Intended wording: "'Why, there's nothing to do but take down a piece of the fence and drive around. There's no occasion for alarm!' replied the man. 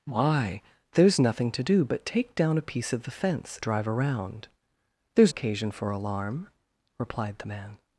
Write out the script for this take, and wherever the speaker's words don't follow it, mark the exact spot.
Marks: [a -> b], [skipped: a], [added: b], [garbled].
"'Why, there's nothing to do but take down a piece of the fence [skipped: and] drive around. There's [skipped: no] occasion for alarm!' replied the man.